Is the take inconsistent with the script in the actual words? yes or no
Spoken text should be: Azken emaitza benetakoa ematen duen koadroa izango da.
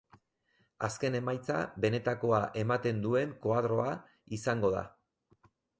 no